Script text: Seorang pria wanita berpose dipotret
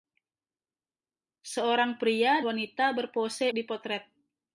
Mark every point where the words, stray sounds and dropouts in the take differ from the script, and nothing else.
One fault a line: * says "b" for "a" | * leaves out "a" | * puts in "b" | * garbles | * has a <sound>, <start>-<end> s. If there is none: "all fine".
all fine